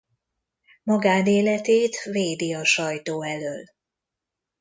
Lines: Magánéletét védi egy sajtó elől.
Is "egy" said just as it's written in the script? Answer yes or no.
no